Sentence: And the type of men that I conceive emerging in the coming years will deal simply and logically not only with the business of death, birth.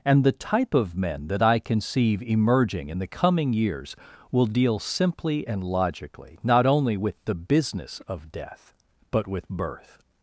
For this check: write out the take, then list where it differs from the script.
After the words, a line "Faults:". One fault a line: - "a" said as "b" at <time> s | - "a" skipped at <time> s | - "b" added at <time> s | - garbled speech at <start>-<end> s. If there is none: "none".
And the type of men that I conceive emerging in the coming years will deal simply and logically not only with the business of death, but with birth.
Faults:
- "but with" added at 9.1 s